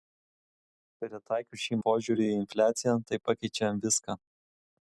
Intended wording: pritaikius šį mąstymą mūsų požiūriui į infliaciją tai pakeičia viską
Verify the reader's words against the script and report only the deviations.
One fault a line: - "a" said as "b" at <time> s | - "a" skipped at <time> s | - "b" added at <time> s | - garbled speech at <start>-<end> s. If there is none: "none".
- "mąstymą mūsų" skipped at 1.8 s